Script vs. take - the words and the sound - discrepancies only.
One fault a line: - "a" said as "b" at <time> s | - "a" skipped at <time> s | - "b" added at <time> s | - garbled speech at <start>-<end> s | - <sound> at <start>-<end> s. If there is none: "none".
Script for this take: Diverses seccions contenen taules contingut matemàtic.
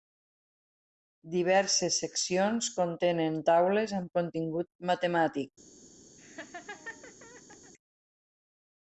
- "amb" added at 4.0 s
- laugh at 6.2-7.7 s